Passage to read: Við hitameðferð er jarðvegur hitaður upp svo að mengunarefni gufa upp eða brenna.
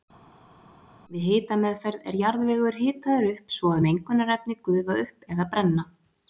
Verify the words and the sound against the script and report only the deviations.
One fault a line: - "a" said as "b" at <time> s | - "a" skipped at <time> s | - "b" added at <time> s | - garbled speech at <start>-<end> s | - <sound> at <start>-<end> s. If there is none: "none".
none